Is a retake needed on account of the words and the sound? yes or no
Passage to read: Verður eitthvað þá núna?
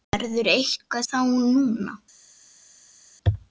no